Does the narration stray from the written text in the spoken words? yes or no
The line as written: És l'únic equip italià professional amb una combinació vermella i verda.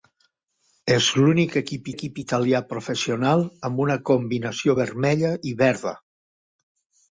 yes